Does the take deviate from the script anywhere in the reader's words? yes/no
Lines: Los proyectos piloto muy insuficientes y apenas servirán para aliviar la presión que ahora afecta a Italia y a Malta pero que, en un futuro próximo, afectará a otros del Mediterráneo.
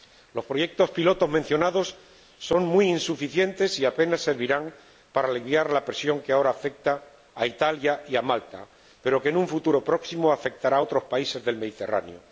yes